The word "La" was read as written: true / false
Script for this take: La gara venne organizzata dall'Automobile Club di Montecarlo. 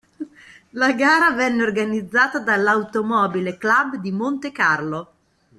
true